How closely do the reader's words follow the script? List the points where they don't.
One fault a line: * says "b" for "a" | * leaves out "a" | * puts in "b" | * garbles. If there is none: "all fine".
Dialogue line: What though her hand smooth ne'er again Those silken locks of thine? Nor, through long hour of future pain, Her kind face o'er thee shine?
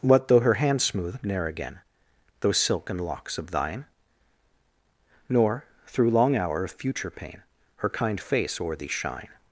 all fine